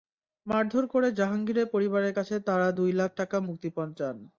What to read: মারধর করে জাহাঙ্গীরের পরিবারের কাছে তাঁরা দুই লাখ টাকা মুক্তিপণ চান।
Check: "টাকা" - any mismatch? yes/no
no